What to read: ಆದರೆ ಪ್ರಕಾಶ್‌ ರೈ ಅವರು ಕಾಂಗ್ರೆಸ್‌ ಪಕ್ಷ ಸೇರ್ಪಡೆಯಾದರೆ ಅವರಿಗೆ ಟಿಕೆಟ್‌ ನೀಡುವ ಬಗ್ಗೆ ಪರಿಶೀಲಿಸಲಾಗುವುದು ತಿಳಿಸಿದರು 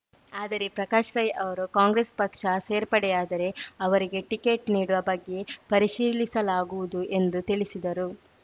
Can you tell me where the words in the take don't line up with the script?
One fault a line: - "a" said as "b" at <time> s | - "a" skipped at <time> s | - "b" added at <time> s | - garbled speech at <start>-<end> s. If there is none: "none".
- "ಎಂದು" added at 7.2 s